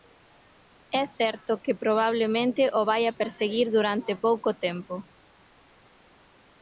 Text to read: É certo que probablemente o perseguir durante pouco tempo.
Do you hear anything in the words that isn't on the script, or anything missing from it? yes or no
yes